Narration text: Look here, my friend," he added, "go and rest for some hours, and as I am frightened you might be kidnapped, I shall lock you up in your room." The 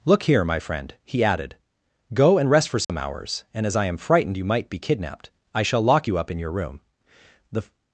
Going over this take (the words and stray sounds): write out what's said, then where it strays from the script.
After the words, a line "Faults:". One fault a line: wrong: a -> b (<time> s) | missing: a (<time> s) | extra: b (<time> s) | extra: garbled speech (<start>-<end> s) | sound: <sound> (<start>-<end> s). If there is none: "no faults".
Look here, my friend," he added, "go and rest for some hours, and as I am frightened you might be kidnapped, I shall lock you up in your room." The
Faults:
sound: dropout (2.8-2.9 s)